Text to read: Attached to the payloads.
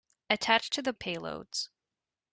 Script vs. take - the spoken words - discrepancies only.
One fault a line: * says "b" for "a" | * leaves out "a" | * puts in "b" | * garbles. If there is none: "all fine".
all fine